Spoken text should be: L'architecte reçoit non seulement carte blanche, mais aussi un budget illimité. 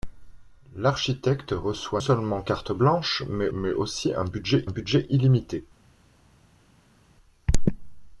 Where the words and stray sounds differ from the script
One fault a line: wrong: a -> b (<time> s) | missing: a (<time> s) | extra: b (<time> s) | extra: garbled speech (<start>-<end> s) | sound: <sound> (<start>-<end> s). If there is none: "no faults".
missing: non (2.0 s)
extra: mais (3.5 s)
extra: budget (4.7 s)